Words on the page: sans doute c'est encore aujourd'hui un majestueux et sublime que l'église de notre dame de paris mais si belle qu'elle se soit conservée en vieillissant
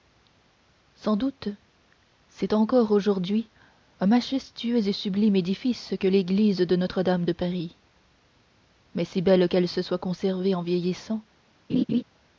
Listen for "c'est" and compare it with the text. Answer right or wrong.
right